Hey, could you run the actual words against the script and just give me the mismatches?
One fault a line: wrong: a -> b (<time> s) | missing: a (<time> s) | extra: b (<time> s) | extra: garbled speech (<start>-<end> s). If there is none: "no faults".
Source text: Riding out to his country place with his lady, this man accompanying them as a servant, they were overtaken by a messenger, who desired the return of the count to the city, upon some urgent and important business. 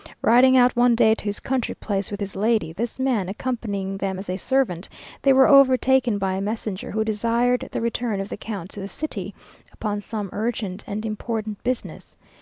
extra: one day (0.8 s)